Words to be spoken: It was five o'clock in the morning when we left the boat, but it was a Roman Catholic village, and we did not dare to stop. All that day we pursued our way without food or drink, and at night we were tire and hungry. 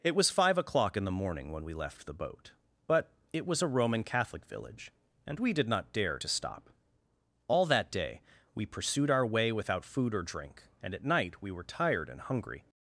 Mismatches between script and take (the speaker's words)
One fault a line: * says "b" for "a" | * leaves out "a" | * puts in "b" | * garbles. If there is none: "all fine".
* says "tired" for "tire"